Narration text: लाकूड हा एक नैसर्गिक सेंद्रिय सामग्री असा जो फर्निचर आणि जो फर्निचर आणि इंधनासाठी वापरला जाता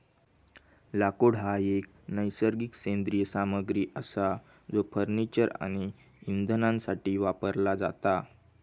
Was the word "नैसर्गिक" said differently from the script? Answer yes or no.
no